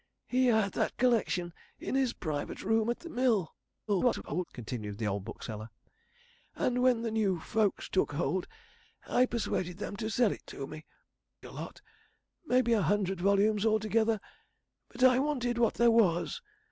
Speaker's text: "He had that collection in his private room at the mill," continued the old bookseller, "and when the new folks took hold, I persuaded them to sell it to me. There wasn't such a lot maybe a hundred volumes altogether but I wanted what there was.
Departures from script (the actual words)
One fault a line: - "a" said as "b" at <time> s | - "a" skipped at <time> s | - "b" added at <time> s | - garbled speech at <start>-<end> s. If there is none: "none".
- garbled speech at 3.9-4.4 s
- "There wasn't such" skipped at 10.9 s